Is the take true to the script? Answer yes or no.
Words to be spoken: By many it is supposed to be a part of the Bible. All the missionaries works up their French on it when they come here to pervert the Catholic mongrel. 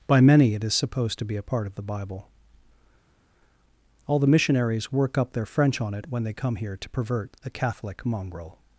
no